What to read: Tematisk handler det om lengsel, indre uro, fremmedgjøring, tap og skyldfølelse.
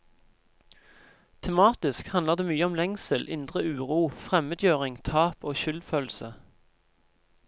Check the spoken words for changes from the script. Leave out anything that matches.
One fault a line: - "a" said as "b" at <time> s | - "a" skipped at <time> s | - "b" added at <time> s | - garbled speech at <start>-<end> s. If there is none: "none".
- "mye" added at 2.5 s